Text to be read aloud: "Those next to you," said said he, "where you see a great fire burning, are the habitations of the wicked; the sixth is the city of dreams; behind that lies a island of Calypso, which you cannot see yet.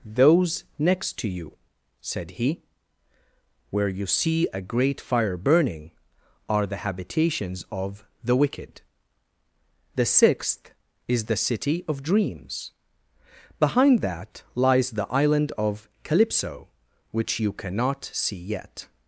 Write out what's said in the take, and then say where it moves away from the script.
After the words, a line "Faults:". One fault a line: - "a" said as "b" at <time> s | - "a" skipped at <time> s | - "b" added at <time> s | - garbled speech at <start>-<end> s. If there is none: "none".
"Those next to you," said he, "where you see a great fire burning, are the habitations of the wicked; the sixth is the city of dreams; behind that lies the island of Calypso, which you cannot see yet.
Faults:
- "said" skipped at 2.3 s
- "a" said as "the" at 14.9 s